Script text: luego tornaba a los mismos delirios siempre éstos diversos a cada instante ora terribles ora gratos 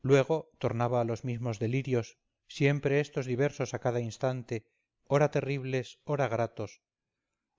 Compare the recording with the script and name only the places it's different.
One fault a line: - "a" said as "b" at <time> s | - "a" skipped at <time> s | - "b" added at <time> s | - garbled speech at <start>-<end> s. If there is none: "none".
none